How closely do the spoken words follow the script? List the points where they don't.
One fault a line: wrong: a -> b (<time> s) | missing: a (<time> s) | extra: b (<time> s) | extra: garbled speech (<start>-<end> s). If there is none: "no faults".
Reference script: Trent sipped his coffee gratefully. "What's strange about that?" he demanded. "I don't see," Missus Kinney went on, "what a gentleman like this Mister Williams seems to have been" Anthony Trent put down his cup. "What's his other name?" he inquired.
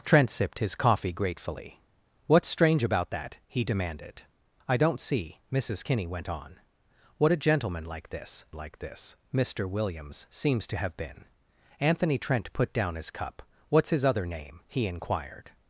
extra: like this (8.5 s)